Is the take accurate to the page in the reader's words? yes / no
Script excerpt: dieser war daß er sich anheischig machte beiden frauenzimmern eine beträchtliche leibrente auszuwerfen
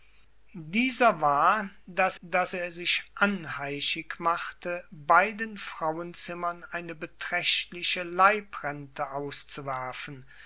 no